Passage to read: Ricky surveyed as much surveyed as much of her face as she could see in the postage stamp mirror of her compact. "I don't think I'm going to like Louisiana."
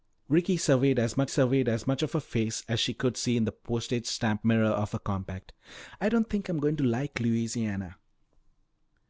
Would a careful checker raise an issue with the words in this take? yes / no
no